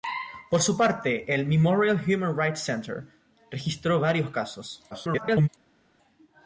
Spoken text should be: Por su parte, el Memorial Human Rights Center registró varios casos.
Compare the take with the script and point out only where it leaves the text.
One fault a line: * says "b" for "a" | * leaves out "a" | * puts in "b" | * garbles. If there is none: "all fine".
* garbles